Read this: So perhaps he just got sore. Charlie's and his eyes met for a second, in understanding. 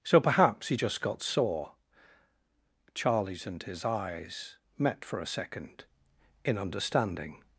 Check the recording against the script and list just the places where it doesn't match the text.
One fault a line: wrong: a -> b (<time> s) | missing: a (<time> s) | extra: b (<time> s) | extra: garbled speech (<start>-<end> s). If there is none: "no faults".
no faults